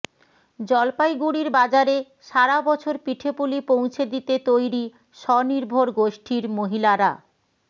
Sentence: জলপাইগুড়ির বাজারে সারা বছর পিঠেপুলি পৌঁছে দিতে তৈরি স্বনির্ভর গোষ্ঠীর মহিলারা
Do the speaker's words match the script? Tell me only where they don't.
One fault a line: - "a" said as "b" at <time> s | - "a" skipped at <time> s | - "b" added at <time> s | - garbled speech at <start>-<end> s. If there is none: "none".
none